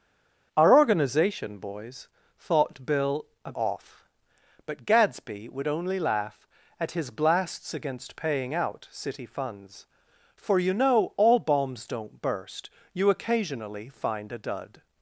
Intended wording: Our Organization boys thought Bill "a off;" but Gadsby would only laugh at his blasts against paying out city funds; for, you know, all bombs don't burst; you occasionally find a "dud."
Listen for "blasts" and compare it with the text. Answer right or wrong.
right